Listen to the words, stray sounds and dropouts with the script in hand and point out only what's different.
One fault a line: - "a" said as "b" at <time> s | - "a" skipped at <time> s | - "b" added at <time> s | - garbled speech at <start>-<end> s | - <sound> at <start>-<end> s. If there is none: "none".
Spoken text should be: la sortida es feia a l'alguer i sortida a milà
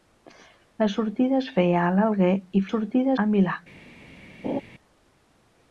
- laugh at 4.4-4.6 s